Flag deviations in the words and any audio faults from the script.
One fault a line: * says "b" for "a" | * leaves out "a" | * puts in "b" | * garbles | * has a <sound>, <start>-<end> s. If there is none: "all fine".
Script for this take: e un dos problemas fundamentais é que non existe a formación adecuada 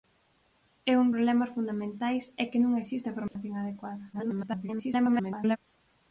* leaves out "dos"
* has a dropout, 3.3-3.4 s
* garbles